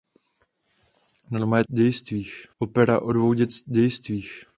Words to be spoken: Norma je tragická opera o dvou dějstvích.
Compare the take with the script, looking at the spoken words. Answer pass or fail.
fail